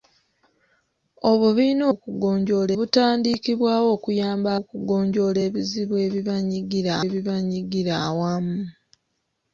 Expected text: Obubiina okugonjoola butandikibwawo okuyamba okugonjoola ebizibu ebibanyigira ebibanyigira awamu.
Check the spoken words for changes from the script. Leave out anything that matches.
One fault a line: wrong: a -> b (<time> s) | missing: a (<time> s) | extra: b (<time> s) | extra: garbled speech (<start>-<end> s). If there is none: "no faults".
no faults